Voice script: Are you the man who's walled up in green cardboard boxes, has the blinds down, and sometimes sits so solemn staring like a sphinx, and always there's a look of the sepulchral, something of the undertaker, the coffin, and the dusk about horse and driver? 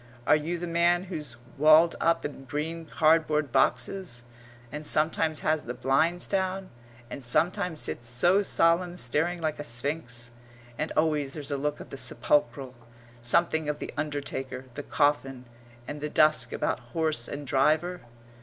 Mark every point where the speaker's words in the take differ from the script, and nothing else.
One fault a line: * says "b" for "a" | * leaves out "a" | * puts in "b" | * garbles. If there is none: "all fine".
* puts in "and sometimes"